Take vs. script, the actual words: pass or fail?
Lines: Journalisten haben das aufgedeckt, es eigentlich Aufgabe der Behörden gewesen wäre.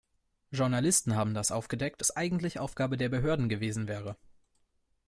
pass